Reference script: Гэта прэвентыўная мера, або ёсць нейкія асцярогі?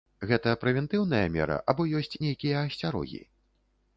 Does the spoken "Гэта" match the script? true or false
true